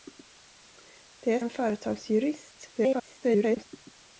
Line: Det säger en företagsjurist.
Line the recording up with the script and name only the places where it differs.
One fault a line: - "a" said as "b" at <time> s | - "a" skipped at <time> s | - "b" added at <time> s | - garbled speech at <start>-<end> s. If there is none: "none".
- "säger" skipped at 1.4 s
- garbled speech at 2.7-3.7 s